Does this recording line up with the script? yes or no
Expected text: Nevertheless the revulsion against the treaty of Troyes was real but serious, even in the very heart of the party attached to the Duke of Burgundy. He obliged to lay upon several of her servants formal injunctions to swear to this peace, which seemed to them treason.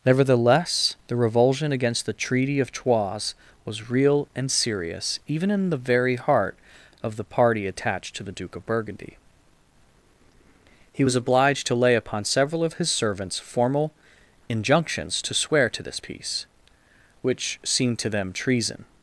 no